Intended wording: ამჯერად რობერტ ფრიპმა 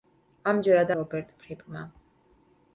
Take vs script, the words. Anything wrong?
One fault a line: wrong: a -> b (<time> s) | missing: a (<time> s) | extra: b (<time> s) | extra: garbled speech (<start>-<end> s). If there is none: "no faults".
no faults